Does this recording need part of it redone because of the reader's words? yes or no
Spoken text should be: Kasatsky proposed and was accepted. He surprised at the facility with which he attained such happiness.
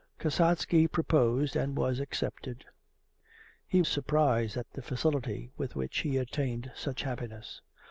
no